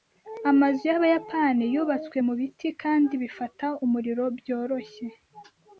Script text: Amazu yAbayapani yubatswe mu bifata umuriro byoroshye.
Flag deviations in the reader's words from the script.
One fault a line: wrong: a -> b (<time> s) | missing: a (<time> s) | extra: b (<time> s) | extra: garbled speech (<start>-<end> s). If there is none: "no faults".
extra: biti kandi (2.4 s)